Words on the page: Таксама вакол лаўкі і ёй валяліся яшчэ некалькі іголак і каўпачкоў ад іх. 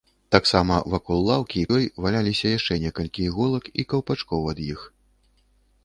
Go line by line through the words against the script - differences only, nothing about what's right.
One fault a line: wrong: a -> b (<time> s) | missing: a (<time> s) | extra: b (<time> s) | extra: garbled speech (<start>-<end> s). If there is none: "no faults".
no faults